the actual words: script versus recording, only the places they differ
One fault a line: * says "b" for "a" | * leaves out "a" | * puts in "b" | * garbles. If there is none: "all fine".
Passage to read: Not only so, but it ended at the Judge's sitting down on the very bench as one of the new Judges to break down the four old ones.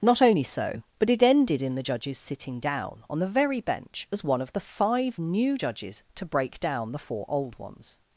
* says "in" for "at"
* puts in "five"